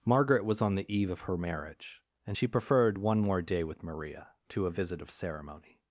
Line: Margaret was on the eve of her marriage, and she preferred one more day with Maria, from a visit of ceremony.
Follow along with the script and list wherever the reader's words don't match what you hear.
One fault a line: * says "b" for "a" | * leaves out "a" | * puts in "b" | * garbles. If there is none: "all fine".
* says "to" for "from"